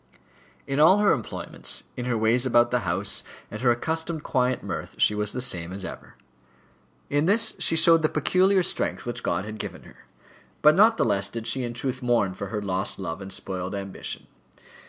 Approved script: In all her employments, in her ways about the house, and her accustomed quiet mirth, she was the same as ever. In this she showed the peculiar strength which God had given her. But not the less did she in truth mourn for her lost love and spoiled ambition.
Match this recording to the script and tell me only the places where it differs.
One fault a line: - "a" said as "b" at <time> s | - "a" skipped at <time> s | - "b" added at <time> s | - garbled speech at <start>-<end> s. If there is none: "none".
none